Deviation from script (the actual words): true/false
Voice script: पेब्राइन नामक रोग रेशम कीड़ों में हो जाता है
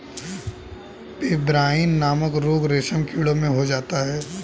false